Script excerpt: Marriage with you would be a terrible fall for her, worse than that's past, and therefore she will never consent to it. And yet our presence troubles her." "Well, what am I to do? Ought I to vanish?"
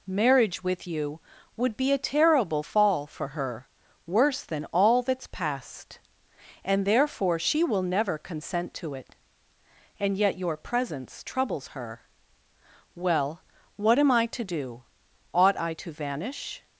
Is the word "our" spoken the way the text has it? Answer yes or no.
no